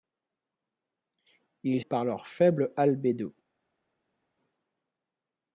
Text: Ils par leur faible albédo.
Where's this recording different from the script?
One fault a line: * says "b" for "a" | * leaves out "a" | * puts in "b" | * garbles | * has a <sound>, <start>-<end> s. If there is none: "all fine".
all fine